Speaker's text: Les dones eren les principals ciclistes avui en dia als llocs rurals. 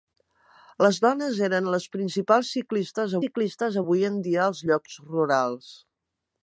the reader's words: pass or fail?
fail